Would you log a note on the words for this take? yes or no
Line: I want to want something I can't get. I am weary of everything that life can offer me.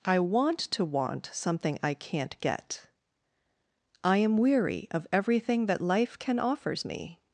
yes